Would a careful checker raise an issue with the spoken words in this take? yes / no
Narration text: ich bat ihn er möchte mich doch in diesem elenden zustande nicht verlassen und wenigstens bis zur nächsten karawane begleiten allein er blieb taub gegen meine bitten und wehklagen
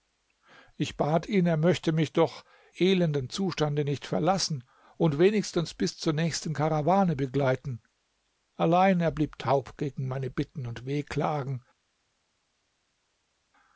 yes